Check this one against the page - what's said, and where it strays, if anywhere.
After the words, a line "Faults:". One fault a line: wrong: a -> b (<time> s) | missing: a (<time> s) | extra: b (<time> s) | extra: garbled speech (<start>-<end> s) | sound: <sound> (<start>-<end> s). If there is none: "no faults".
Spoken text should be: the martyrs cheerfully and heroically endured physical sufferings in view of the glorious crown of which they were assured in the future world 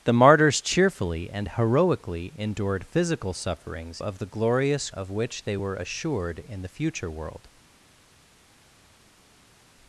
the martyrs cheerfully and heroically endured physical sufferings of the glorious of which they were assured in the future world
Faults:
missing: in view (4.0 s)
missing: crown (4.9 s)